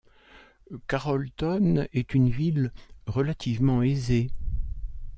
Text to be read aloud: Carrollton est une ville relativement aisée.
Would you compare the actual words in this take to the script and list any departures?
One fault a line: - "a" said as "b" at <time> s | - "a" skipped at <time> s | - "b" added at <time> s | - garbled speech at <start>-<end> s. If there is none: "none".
none